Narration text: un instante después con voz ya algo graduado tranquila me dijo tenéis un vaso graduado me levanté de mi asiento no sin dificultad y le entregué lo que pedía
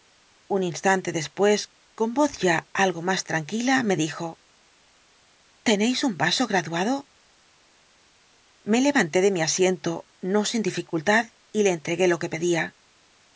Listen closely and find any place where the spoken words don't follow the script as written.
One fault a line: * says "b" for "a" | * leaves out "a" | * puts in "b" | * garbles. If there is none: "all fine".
* says "más" for "graduado"